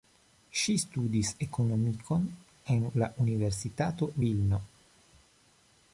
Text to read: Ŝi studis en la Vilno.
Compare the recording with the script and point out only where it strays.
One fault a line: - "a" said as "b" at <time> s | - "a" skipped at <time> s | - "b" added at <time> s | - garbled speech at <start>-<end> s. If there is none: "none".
- "ekonomikon" added at 1.4 s
- "Universitato" added at 3.3 s